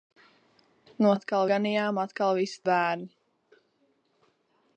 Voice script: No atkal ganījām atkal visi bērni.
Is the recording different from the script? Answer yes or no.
no